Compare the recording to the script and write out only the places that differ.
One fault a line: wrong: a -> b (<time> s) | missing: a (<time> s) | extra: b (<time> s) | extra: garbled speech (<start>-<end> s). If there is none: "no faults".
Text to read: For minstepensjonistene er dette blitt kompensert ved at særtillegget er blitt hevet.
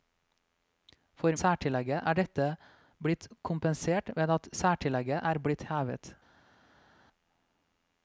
wrong: minstepensjonistene -> særtillegget (1.4 s)